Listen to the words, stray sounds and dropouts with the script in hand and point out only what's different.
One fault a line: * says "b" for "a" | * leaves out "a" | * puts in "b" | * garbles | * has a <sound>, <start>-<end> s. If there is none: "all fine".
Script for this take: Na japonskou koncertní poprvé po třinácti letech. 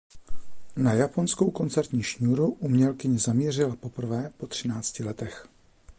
* puts in "šňůru umělkyně zamířila"